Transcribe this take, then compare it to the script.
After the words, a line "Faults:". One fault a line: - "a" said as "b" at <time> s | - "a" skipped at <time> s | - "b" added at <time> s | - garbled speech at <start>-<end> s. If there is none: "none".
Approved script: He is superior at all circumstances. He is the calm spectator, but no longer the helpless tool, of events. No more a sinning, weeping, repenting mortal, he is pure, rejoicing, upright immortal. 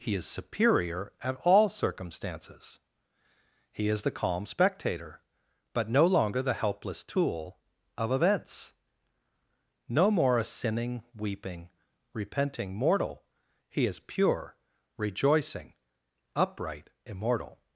He is superior at all circumstances. He is the calm spectator, but no longer the helpless tool, of events. No more a sinning, weeping, repenting mortal, he is pure, rejoicing, upright immortal.
Faults:
none